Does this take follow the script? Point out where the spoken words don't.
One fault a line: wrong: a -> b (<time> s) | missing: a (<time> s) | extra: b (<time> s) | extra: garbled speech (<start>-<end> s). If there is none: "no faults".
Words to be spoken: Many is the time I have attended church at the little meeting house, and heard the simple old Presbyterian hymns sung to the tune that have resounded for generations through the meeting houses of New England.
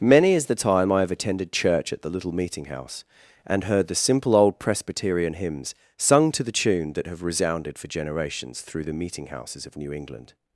no faults